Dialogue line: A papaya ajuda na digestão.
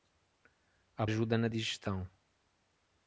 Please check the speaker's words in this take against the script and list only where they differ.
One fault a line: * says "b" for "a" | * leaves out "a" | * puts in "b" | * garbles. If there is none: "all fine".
* leaves out "papaya"